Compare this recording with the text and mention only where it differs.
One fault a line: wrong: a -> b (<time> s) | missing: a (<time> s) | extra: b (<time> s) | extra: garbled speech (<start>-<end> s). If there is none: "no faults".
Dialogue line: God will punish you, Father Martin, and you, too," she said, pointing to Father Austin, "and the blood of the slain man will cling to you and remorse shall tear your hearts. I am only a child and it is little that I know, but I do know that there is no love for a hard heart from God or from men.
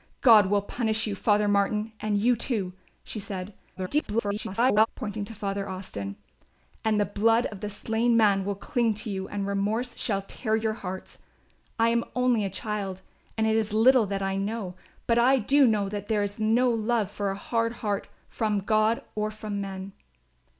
extra: garbled speech (3.8-4.9 s)